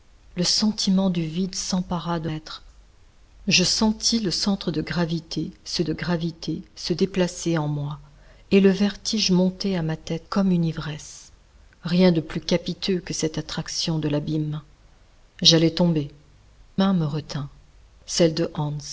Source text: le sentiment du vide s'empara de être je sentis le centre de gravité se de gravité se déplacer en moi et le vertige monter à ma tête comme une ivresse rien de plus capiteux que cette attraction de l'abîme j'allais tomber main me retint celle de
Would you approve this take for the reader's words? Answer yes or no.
yes